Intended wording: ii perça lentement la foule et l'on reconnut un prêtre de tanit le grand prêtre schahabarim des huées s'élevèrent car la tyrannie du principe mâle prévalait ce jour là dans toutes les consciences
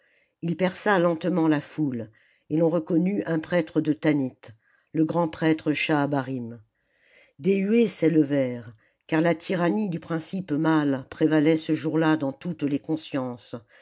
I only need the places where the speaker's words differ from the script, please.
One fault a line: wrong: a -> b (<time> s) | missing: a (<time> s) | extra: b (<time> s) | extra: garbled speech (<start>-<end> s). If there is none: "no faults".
no faults